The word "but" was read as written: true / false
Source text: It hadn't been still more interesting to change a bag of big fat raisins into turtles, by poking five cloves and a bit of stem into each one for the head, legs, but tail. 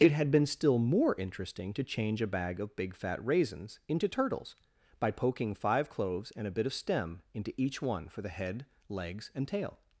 false